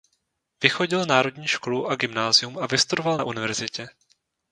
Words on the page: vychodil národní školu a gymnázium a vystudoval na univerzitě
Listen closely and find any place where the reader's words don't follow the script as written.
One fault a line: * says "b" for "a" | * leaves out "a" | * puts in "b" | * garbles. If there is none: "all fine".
all fine